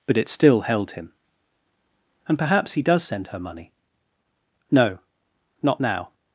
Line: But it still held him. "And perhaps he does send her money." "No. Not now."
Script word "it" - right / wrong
right